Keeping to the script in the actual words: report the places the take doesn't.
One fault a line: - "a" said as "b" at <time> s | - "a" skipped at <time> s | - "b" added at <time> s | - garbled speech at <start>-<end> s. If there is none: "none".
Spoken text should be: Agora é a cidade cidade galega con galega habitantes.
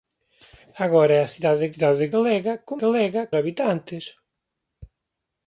none